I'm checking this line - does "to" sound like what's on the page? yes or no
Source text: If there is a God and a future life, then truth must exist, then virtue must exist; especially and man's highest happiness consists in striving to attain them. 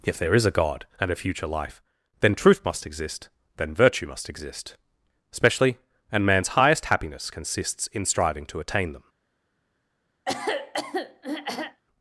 yes